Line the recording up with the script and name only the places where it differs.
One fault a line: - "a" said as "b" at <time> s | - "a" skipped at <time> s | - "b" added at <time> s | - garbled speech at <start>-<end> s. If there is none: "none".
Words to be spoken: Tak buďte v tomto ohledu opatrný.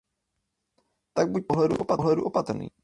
none